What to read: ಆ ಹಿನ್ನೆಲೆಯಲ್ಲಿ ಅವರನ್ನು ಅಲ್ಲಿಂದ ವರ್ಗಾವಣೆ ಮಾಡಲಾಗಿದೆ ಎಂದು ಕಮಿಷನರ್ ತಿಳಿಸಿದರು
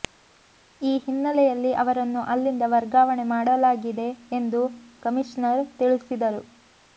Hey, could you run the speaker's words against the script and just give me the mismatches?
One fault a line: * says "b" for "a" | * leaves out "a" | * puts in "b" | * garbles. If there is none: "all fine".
* says "ಈ" for "ಆ"